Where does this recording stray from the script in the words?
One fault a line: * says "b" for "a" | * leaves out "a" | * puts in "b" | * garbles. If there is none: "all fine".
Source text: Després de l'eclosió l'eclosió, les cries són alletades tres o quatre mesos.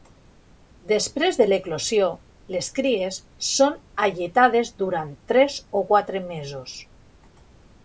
* leaves out "l'eclosió"
* puts in "durant"